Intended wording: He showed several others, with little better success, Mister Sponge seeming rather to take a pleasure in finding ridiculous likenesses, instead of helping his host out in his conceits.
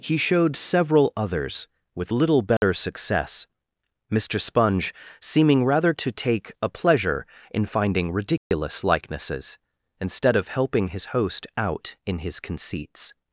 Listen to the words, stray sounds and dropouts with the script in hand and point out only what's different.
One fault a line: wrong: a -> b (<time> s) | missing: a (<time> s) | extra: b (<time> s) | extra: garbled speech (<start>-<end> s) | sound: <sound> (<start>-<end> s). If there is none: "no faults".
sound: dropout (2.6-2.6 s)
sound: dropout (8.4-8.5 s)